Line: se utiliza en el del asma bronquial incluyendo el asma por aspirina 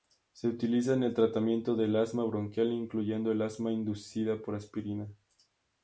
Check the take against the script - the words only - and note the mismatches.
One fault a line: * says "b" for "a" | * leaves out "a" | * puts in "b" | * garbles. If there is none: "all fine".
* puts in "tratamiento"
* puts in "inducida"